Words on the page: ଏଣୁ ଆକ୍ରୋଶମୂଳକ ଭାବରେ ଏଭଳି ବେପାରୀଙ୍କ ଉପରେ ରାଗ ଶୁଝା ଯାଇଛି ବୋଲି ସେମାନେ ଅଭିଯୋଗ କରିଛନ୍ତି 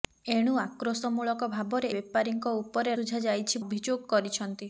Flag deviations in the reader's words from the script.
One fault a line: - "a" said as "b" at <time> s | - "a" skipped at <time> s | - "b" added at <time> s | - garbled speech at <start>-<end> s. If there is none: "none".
- "ଏଭଳି" skipped at 1.9 s
- "ରାଗ" skipped at 3.0 s
- "ବୋଲି ସେମାନେ" skipped at 3.6 s